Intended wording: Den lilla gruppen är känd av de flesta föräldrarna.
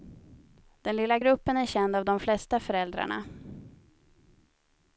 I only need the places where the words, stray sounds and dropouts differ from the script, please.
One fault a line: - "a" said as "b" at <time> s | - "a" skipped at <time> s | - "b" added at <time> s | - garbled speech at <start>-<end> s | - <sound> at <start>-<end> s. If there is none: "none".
none